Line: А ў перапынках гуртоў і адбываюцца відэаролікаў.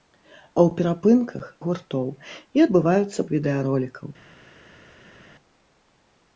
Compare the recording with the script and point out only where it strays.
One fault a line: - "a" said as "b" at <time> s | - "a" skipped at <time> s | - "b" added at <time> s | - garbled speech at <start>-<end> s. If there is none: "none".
none